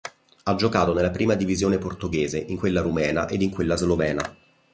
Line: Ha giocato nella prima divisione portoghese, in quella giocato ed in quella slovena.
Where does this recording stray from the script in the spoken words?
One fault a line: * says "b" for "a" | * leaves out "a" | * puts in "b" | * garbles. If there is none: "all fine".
* says "rumena" for "giocato"